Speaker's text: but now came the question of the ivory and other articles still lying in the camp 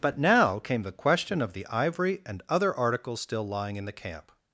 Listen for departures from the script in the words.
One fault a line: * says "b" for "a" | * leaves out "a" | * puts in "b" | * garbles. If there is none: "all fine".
all fine